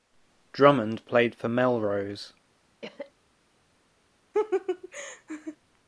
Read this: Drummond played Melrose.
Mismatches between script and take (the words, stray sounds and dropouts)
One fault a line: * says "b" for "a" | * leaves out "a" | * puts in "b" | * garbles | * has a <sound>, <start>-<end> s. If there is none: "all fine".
* puts in "for"
* has a cough, 2.8-3.1 s
* has a laugh, 4.3-5.6 s